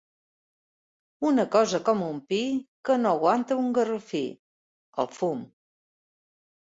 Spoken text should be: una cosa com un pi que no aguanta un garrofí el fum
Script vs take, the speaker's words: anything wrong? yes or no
no